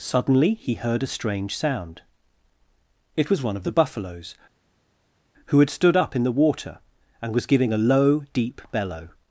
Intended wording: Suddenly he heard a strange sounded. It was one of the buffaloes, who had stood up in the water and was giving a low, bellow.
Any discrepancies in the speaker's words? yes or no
yes